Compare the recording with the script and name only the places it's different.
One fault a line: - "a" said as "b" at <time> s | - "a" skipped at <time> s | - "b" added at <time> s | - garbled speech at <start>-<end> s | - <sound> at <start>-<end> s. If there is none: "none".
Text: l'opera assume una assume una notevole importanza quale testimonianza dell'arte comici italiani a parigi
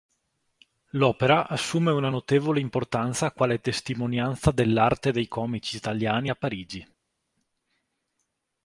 - "assume una" skipped at 2.1 s
- "dei" added at 5.1 s